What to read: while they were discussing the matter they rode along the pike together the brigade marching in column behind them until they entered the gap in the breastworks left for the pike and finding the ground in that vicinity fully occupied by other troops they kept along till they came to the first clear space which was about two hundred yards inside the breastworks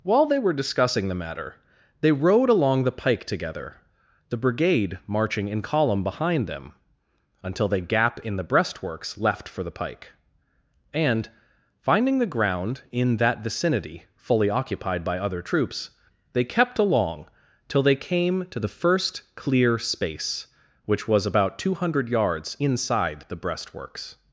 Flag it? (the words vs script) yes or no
yes